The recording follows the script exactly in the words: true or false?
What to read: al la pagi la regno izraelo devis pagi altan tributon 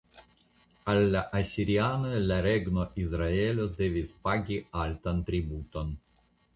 false